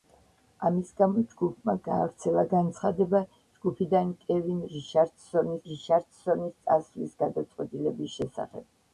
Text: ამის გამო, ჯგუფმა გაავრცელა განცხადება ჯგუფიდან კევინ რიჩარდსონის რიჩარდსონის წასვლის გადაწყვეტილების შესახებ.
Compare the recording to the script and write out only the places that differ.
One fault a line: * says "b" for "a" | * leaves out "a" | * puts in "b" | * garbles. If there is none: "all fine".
all fine